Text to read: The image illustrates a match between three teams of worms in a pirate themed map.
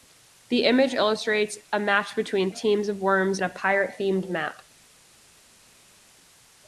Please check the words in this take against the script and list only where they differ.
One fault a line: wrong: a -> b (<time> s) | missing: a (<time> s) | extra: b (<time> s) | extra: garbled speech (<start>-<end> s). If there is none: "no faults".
missing: three (2.5 s)
missing: in (3.4 s)